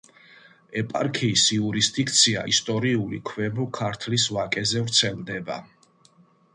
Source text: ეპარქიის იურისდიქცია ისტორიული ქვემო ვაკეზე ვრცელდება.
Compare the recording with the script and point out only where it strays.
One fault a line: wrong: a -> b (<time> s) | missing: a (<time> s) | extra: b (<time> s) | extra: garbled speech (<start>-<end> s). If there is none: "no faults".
extra: ქართლის (3.8 s)